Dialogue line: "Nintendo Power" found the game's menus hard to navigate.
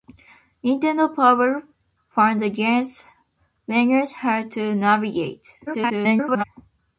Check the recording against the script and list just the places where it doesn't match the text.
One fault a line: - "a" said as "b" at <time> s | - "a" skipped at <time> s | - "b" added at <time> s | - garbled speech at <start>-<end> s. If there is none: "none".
- garbled speech at 5.7-6.4 s